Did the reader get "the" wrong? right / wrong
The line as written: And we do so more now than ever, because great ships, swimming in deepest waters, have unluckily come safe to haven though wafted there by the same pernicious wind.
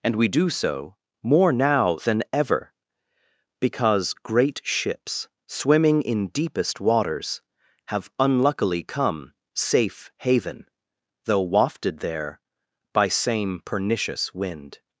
wrong